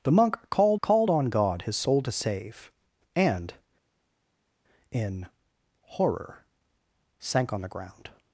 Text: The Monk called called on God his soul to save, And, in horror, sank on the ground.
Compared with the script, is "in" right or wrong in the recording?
right